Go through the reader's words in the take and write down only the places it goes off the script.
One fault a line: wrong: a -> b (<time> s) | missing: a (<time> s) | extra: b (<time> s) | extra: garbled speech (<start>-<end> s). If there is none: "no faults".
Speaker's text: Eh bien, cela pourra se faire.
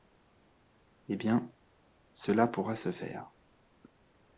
no faults